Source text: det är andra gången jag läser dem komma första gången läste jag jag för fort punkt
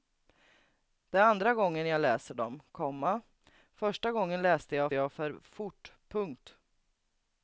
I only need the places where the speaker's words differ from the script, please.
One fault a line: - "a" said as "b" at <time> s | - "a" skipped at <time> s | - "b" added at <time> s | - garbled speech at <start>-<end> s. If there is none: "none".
none